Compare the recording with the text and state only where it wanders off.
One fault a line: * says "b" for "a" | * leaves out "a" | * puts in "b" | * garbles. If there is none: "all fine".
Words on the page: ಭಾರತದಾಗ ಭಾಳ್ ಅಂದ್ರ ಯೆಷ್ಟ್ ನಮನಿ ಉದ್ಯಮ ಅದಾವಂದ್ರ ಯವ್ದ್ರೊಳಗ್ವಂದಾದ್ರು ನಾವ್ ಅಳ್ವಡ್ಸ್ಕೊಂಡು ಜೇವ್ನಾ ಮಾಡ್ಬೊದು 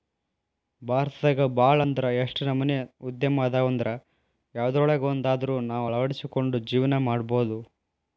all fine